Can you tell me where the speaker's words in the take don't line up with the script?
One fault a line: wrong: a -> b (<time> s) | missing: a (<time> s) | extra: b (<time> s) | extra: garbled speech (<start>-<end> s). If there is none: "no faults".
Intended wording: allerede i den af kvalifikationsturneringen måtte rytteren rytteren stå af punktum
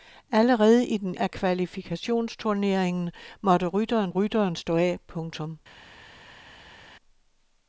no faults